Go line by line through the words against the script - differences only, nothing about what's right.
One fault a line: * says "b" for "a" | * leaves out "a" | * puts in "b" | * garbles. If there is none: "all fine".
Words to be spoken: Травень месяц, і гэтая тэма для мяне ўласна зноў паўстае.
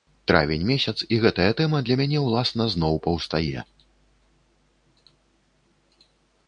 all fine